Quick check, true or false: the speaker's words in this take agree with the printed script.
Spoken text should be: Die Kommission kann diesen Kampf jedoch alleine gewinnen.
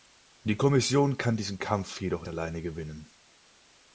true